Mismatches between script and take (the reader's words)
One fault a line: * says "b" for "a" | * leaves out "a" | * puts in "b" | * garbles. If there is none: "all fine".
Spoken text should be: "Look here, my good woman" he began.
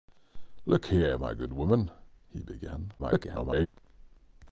* garbles